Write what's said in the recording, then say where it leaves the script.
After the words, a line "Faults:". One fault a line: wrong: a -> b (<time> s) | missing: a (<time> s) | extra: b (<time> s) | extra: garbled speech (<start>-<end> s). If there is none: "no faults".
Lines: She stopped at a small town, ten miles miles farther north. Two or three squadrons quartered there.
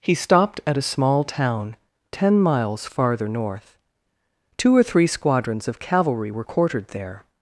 He stopped at a small town, ten miles farther north. Two or three squadrons of cavalry were quartered there.
Faults:
wrong: She -> He (0.0 s)
missing: miles (2.9 s)
extra: of cavalry were (5.7 s)